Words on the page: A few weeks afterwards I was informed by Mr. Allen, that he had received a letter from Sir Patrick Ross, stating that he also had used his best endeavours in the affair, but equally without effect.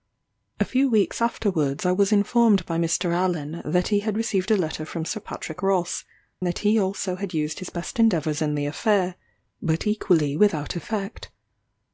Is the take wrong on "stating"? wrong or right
wrong